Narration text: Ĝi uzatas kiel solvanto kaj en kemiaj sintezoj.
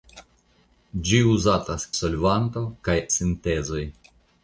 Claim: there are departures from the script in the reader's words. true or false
true